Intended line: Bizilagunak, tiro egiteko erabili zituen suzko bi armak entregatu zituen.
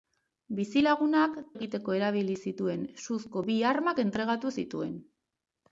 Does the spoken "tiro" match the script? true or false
false